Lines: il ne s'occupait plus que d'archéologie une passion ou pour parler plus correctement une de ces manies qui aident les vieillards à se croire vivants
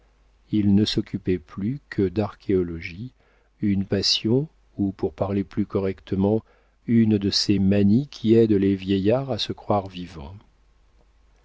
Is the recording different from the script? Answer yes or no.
no